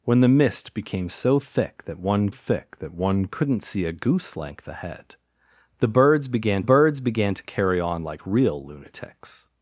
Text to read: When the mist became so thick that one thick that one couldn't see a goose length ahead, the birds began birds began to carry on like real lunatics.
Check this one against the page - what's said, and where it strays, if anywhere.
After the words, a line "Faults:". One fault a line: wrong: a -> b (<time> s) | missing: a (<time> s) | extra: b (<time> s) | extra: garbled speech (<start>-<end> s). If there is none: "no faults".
When the mist became so thick that one thick that one couldn't see a goose length ahead, the birds began birds began to carry on like real lunatics.
Faults:
no faults